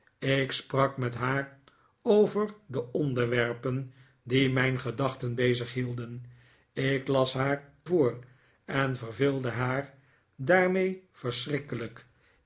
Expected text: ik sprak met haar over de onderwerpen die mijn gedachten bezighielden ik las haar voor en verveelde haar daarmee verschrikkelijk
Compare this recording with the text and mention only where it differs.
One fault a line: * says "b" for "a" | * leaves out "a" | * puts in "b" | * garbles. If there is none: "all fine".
all fine